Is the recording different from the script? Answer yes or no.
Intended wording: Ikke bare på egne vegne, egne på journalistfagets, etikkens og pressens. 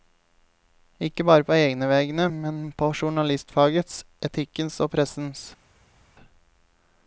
yes